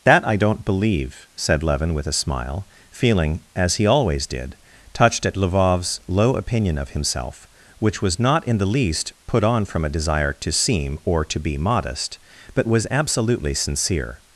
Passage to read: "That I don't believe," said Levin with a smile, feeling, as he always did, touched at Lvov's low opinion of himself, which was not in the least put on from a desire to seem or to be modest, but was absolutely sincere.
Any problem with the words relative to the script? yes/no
no